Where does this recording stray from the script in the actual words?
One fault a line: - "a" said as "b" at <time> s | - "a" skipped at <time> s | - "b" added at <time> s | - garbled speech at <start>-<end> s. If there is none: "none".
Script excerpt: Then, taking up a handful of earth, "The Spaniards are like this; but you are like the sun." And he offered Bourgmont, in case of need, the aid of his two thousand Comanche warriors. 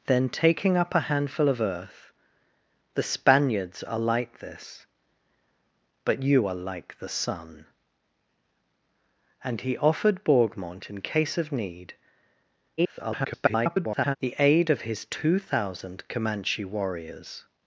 - garbled speech at 12.8-14.2 s